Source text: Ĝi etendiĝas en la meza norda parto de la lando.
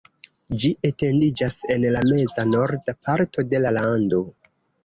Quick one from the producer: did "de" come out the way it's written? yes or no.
yes